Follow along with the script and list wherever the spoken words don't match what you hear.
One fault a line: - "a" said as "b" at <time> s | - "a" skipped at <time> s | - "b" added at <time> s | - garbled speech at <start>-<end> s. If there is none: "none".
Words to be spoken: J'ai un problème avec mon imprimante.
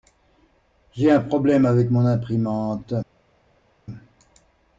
none